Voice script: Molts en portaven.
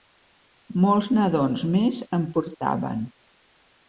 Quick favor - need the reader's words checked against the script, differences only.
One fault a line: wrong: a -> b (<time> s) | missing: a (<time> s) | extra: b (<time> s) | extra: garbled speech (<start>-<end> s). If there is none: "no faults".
extra: nadons més (1.2 s)